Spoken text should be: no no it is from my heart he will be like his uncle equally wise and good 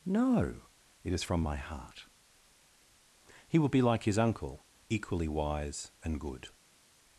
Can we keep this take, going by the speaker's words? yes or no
no